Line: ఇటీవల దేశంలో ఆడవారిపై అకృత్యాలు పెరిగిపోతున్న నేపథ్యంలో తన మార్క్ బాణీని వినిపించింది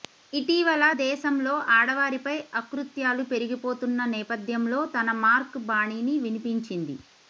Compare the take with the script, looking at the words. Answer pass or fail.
pass